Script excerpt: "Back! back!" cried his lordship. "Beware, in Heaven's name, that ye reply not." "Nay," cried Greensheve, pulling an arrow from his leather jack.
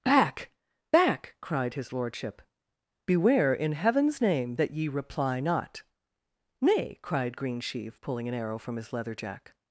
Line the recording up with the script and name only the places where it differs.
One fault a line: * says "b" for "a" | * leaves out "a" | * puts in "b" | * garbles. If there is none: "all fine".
all fine